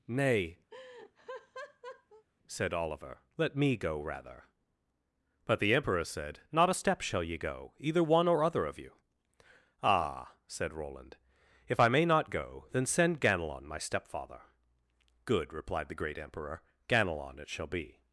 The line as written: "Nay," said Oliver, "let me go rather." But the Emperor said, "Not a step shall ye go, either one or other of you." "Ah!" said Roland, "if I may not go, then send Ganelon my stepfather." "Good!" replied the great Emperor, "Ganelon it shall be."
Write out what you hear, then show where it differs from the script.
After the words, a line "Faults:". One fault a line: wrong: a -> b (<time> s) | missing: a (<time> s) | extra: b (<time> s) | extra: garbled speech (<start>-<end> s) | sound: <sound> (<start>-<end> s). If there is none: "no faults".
"Nay," said Oliver, "let me go rather." But the Emperor said, "Not a step shall ye go, either one or other of you." "Ah!" said Roland, "if I may not go, then send Ganelon my stepfather." "Good!" replied the great Emperor, "Ganelon it shall be."
Faults:
sound: laugh (0.7-2.3 s)